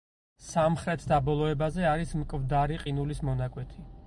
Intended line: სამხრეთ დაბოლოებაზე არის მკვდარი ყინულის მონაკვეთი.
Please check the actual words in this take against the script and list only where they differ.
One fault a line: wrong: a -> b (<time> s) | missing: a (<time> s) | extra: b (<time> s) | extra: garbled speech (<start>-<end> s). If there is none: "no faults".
no faults